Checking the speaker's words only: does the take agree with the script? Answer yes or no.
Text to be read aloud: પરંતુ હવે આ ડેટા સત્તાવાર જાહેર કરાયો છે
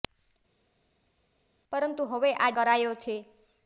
no